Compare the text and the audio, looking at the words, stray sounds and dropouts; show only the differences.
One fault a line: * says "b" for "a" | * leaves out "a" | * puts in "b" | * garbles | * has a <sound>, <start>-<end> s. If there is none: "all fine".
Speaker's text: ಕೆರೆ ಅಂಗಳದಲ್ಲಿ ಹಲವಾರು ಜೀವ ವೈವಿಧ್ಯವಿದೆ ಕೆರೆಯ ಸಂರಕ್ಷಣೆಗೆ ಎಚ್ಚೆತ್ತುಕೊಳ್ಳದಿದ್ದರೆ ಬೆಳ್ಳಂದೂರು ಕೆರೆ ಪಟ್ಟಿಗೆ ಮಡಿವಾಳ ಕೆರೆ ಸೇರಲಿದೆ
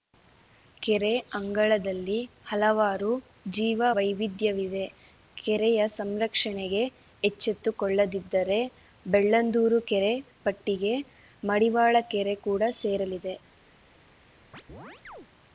* puts in "ಕೂಡ"
* has a chirp, 14.5-15.3 s